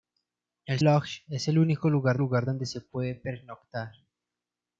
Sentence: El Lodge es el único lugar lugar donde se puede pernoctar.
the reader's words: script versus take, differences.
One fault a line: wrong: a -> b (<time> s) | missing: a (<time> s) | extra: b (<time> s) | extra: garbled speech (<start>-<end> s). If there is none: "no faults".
no faults